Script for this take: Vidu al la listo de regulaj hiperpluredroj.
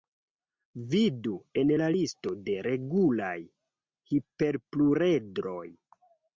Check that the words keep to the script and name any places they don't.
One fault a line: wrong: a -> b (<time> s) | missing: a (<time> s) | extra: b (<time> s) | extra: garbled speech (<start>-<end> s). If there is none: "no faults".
wrong: al -> en (1.6 s)